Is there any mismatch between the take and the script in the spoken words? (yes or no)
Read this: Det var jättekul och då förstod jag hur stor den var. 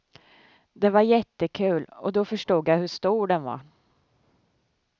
no